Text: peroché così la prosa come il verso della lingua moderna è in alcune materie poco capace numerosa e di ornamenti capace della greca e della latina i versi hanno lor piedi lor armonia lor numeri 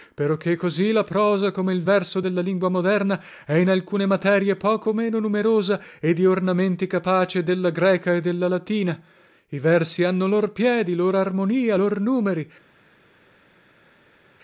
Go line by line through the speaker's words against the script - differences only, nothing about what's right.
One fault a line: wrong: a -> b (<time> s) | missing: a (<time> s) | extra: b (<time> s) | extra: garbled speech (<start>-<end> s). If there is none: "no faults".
wrong: capace -> meno (4.9 s)